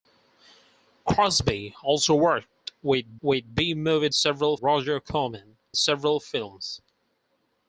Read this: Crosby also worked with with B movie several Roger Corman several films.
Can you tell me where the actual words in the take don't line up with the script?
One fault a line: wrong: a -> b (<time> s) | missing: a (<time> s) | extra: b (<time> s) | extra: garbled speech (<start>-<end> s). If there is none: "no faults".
no faults